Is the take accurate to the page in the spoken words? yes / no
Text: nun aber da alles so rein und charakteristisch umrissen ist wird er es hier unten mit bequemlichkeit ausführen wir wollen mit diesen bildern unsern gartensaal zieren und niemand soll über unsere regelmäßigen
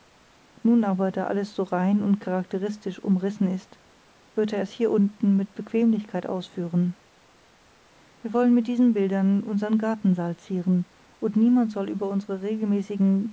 yes